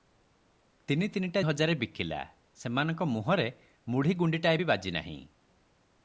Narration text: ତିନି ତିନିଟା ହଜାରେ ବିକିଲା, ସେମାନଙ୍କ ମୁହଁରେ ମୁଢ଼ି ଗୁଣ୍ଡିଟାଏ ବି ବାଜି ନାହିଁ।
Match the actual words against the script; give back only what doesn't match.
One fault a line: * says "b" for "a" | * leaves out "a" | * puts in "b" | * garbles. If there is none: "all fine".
all fine